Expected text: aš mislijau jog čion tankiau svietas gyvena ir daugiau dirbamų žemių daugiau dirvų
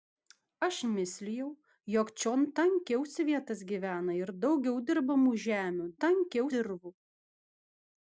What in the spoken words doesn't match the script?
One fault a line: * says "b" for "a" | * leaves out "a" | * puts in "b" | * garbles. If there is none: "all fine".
* says "tankiau" for "daugiau"